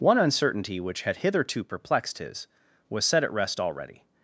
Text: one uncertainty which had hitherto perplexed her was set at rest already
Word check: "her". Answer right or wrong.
wrong